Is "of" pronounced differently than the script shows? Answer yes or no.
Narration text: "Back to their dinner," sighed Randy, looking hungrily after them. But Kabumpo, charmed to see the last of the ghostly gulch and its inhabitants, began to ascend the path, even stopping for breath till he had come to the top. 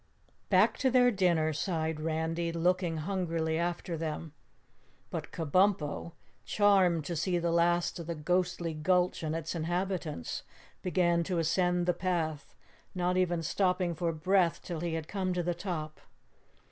no